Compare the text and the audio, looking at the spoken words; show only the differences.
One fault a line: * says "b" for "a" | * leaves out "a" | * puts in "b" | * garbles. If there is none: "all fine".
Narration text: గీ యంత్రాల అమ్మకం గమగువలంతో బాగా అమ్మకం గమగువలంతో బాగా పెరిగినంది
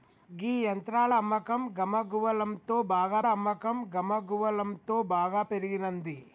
all fine